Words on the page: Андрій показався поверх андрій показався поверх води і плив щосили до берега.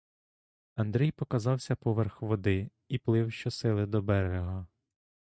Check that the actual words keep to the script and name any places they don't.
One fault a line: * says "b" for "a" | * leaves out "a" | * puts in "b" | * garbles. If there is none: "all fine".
* leaves out "андрій показався поверх"